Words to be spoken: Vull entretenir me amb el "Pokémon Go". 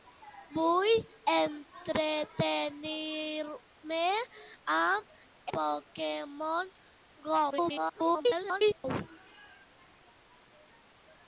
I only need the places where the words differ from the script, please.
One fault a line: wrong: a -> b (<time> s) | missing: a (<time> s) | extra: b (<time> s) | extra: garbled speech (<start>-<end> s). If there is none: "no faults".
missing: el (5.2 s)
extra: garbled speech (7.5-8.8 s)